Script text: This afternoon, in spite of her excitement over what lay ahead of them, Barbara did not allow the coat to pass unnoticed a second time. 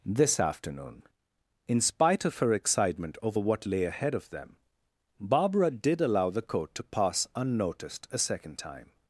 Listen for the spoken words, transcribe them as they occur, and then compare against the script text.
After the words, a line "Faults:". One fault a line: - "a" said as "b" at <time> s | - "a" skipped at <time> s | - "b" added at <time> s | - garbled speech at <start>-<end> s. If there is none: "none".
This afternoon, in spite of her excitement over what lay ahead of them, Barbara did allow the coat to pass unnoticed a second time.
Faults:
- "not" skipped at 6.0 s